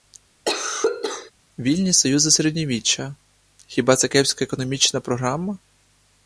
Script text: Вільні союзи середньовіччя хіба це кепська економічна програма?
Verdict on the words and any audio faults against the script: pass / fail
fail